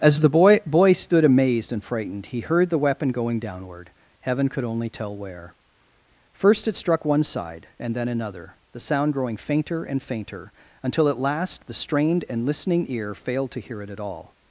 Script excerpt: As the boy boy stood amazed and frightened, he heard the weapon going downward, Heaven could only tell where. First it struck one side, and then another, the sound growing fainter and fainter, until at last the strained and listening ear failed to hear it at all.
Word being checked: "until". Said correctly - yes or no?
yes